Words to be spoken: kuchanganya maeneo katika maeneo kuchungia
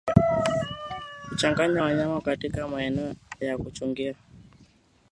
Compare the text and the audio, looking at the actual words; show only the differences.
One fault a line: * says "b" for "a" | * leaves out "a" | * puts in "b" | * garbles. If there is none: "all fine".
* says "wanyama" for "maeneo"
* puts in "ya"